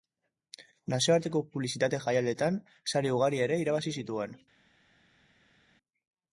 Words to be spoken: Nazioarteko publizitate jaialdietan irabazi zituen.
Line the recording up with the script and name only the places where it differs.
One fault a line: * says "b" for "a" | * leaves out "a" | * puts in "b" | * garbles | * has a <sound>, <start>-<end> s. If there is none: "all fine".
* puts in "sari ugari ere"